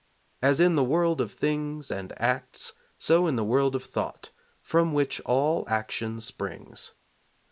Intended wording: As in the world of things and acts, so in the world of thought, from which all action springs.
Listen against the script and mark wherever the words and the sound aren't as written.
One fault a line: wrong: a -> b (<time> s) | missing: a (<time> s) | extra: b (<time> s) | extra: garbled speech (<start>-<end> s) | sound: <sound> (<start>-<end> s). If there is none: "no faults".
no faults